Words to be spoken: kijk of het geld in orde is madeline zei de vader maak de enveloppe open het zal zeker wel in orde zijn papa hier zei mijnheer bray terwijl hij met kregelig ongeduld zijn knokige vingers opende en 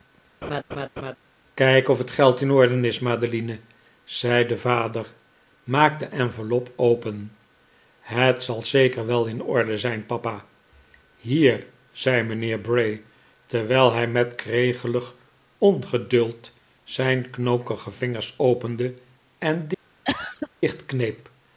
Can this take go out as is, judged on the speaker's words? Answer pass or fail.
pass